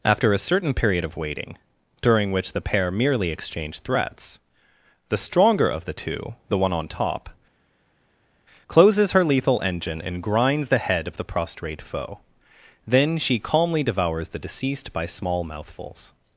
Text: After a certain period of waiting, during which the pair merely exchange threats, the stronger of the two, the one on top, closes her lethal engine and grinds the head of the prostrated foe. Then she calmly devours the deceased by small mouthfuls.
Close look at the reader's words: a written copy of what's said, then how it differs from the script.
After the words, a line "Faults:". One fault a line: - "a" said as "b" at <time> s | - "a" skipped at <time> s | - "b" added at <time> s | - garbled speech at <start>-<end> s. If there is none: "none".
After a certain period of waiting, during which the pair merely exchange threats, the stronger of the two, the one on top, closes her lethal engine and grinds the head of the prostrate foe. Then she calmly devours the deceased by small mouthfuls.
Faults:
- "prostrated" said as "prostrate" at 11.2 s